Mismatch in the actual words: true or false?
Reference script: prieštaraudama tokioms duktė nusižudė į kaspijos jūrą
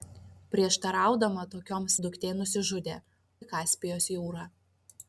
false